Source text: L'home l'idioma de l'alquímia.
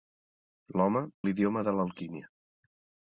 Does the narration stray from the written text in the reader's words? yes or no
no